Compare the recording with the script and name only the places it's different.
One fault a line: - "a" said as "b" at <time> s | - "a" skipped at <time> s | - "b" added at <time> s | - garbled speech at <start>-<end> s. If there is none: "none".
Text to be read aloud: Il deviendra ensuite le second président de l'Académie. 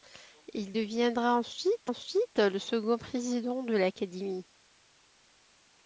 - "ensuite" added at 1.8 s